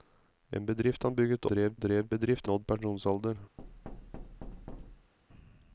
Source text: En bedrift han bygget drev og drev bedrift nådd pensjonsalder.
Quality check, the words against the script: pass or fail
pass